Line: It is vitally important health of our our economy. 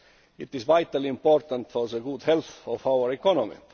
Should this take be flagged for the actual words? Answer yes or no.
yes